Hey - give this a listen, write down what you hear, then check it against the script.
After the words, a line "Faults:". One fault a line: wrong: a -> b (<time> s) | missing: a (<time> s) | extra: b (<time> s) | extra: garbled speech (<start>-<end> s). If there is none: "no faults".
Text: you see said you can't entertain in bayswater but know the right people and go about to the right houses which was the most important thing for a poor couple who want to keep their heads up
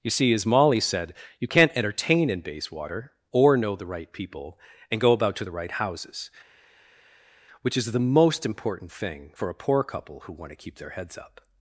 you see as molly said you can't entertain in bayswater or know the right people and go about to the right houses which is the most important thing for a poor couple who want to keep their heads up
Faults:
extra: as molly (0.3 s)
wrong: but -> or (3.3 s)
wrong: was -> is (7.8 s)